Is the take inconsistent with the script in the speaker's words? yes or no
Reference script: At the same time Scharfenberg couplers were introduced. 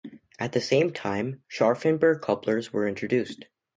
no